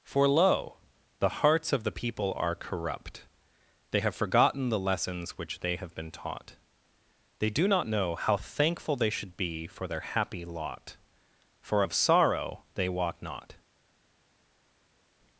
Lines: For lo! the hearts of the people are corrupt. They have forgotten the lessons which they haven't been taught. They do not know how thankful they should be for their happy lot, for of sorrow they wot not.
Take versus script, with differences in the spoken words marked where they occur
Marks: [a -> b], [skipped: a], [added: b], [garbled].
For lo! the hearts of the people are corrupt. They have forgotten the lessons which they [haven't -> have] been taught. They do not know how thankful they should be for their happy lot, for of sorrow they wot not.